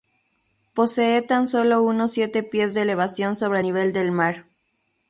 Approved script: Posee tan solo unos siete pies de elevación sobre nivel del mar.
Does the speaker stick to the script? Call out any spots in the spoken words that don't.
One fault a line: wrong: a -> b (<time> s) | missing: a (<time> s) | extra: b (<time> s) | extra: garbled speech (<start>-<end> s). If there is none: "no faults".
no faults